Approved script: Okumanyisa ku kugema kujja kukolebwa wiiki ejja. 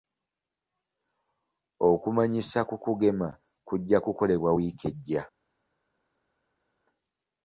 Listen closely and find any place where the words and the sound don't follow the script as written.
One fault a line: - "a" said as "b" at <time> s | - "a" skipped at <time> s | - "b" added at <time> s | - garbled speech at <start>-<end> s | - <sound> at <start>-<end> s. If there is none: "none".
none